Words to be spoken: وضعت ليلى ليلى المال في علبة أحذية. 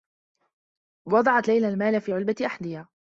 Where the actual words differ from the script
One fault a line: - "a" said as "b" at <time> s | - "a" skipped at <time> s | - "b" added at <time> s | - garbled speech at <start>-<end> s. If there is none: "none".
- "ليلى" skipped at 1.7 s